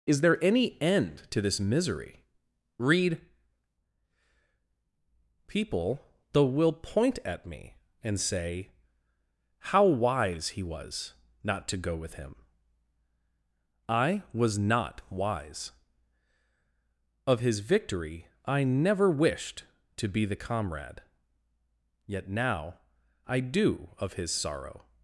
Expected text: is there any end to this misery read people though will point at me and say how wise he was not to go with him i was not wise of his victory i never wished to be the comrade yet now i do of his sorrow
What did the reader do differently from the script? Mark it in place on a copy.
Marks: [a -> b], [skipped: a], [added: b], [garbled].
is there any end to this misery read people though will point at me and say how wise he was not to go with him i was not wise of his victory i never wished to be the comrade yet now i do of his sorrow